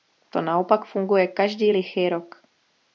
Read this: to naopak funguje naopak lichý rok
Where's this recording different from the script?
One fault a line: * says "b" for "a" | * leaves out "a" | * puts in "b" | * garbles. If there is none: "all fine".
* says "každý" for "naopak"